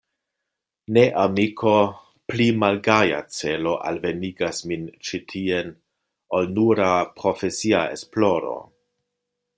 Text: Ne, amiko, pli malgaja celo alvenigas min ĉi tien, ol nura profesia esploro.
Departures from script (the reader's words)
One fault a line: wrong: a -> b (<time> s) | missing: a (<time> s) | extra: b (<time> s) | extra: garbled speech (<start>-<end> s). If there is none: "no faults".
no faults